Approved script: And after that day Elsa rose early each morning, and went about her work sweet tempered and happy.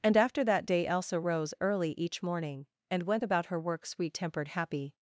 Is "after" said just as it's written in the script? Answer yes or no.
yes